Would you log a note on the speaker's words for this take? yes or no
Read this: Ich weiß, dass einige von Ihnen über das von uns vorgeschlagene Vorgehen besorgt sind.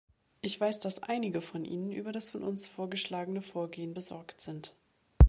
no